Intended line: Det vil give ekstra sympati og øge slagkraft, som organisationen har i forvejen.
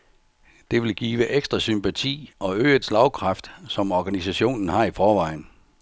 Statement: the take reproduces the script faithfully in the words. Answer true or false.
true